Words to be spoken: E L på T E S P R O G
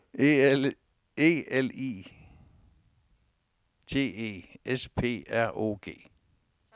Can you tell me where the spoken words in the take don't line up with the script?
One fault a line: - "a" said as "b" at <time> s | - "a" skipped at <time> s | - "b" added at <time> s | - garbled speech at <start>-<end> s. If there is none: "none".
- "på" said as "I" at 1.7 s